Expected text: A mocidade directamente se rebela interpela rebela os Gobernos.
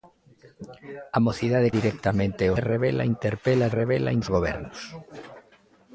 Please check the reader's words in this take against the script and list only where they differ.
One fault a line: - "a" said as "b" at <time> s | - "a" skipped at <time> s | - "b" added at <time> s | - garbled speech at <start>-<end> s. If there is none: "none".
none